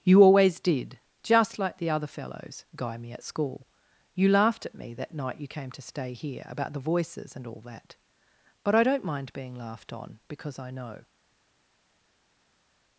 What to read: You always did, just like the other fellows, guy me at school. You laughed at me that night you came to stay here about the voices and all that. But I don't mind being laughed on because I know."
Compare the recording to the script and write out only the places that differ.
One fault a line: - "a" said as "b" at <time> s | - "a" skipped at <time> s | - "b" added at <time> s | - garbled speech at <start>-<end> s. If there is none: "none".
none